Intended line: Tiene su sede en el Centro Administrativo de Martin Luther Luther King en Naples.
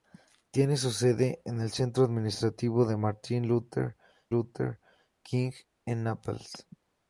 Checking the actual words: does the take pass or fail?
pass